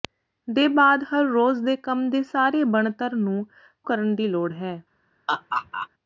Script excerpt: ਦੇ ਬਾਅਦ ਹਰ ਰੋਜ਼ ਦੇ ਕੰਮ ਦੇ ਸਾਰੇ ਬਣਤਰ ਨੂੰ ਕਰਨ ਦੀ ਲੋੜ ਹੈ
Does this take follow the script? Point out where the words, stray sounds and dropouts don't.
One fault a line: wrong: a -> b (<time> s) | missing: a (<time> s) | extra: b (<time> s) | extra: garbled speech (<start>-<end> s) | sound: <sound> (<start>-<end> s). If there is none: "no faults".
sound: laugh (5.3-5.9 s)